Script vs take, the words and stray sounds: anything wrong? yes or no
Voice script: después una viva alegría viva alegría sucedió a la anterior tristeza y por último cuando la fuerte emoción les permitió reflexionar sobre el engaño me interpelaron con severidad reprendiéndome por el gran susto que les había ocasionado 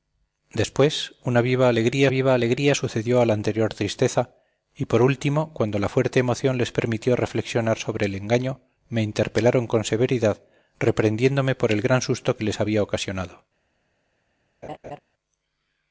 yes